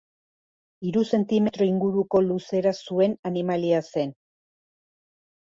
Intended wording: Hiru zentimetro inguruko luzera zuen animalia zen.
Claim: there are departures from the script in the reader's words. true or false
false